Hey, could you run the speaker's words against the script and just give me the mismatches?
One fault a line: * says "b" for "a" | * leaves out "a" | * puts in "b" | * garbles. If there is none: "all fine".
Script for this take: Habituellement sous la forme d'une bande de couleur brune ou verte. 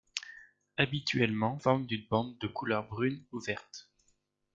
* leaves out "sous la"